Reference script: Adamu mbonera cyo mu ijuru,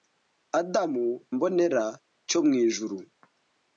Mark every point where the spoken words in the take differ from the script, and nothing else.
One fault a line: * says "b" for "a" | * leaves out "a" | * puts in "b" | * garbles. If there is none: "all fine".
all fine